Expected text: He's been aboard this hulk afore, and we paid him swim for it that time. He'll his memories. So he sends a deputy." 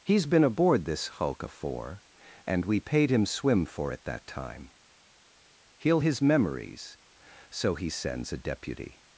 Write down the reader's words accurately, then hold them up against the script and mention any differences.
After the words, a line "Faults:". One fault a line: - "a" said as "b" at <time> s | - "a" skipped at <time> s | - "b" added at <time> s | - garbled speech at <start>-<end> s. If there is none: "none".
He's been aboard this hulk afore, and we paid him swim for it that time. He'll his memories. So he sends a deputy."
Faults:
none